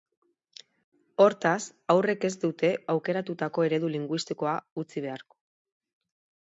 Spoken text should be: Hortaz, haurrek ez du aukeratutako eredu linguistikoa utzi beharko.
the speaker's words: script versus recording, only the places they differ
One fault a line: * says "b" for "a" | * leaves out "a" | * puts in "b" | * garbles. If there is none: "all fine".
* says "dute" for "du"